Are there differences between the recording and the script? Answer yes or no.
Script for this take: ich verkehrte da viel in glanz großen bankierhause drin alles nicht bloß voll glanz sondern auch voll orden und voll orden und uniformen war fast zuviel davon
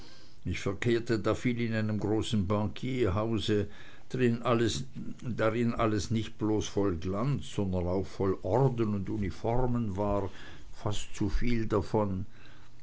yes